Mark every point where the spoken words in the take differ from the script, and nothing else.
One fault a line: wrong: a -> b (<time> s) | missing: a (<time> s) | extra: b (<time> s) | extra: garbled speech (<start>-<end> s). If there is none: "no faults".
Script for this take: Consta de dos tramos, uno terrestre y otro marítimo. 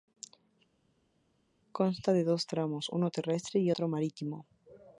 no faults